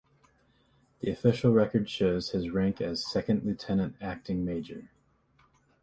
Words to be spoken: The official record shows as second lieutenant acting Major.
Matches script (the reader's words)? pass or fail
fail